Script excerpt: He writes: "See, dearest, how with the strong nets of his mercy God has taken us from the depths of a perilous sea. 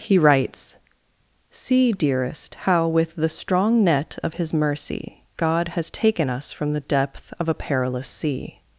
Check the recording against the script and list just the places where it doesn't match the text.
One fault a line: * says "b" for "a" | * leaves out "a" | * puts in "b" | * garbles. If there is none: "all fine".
* says "net" for "nets"
* says "depth" for "depths"